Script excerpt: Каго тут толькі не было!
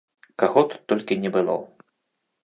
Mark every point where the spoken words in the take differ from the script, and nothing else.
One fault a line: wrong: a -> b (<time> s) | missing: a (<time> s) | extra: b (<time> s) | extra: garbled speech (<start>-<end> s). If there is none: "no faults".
no faults